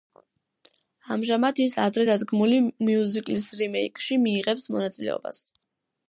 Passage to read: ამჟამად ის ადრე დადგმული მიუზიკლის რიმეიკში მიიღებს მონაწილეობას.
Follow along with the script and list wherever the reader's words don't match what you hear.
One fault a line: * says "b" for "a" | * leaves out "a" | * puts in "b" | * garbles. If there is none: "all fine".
all fine